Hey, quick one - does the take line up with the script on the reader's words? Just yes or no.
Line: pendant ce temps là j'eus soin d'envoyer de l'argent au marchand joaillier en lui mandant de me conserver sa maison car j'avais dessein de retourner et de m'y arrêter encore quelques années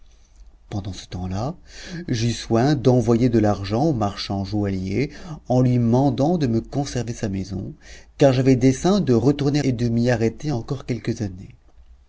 yes